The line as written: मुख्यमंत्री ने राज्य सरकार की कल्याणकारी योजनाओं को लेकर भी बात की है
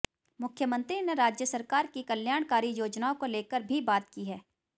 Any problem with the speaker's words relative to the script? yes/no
no